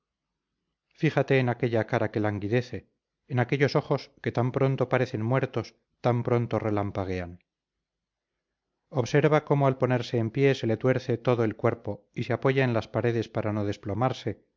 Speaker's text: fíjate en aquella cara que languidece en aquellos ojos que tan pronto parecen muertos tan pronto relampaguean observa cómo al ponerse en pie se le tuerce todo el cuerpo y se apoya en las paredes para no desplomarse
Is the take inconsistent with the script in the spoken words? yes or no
no